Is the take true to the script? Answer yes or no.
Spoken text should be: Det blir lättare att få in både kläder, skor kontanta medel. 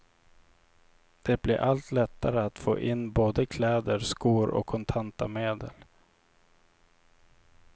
no